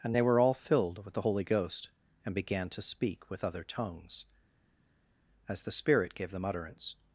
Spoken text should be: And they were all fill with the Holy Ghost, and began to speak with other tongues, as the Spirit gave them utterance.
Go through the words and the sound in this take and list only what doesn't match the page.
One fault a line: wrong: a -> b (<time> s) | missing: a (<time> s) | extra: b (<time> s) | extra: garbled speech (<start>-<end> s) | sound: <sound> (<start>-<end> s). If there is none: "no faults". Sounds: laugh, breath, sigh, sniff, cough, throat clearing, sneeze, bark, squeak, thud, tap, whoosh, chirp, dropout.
wrong: fill -> filled (0.5 s)